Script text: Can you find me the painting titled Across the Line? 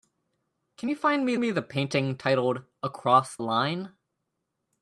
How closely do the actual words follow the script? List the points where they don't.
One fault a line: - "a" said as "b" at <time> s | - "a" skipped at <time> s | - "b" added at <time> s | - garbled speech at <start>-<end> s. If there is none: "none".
- "me" added at 1.4 s
- "the" skipped at 3.4 s